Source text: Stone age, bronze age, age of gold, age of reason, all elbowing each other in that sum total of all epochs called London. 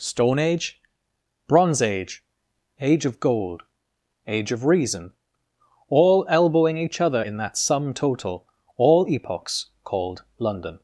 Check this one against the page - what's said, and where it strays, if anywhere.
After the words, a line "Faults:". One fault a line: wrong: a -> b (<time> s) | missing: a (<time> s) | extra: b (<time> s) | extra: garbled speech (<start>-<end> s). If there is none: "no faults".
Stone age, bronze age, age of gold, age of reason, all elbowing each other in that sum total all epochs called London.
Faults:
missing: of (8.5 s)